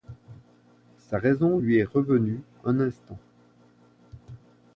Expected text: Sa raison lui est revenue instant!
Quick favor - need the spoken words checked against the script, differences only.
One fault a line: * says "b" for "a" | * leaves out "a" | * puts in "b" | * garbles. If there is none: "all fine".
* puts in "un"